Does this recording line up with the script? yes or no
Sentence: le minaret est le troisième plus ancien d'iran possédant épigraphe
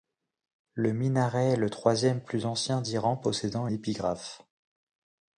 yes